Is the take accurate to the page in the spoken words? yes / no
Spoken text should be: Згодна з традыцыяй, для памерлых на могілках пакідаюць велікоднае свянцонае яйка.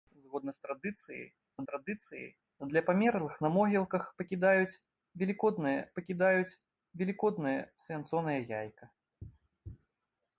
no